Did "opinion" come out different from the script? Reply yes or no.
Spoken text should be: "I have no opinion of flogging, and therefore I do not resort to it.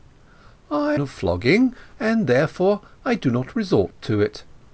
yes